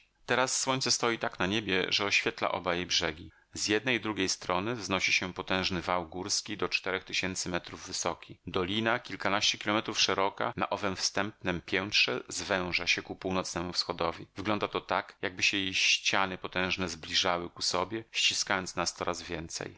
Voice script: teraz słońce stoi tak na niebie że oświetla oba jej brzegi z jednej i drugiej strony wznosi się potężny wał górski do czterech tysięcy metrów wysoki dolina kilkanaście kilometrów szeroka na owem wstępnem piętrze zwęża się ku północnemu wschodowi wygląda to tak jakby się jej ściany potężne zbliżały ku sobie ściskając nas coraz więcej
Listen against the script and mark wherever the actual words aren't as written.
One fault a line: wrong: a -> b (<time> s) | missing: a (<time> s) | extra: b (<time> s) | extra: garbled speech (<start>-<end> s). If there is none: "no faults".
no faults